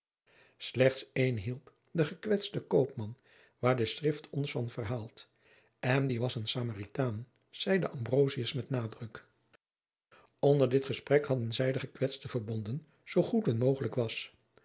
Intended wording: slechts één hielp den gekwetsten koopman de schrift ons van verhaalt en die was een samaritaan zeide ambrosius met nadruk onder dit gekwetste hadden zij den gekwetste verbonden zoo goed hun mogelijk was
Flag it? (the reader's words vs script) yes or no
yes